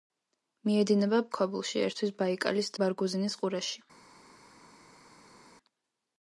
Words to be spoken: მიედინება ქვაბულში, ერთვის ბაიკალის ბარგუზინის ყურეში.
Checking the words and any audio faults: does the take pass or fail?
pass